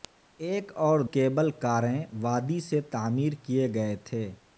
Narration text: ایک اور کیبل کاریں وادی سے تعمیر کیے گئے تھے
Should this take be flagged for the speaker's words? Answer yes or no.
no